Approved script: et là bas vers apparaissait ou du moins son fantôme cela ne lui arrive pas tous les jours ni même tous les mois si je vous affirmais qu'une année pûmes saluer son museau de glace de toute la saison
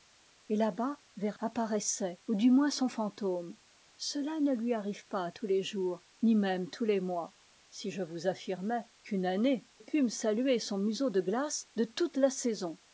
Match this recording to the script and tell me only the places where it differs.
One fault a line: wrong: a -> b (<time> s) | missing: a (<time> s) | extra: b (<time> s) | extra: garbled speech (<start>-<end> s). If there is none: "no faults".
no faults